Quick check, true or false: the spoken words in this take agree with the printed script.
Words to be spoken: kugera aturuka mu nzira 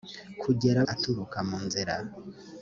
true